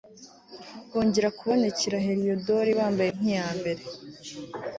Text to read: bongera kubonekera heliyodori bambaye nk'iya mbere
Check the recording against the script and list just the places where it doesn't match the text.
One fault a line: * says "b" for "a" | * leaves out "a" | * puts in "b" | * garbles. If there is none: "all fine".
all fine